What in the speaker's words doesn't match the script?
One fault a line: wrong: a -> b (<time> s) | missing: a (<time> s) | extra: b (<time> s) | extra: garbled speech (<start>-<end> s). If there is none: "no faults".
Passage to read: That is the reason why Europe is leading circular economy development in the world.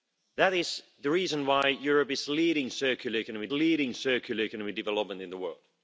extra: leading circular economy (3.5 s)